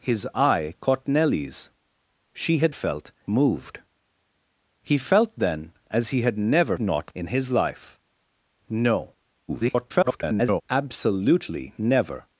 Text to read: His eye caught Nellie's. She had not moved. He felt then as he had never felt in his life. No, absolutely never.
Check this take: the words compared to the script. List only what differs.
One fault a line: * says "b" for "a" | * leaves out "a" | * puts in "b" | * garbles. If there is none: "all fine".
* says "felt" for "not"
* says "not" for "felt"
* garbles